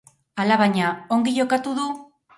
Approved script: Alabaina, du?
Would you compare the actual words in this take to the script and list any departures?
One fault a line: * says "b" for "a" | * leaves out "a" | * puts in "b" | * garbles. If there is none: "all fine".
* puts in "ongi jokatu"